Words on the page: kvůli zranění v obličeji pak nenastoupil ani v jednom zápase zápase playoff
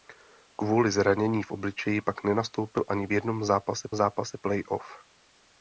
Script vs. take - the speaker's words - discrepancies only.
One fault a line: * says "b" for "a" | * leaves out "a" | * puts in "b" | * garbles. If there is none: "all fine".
all fine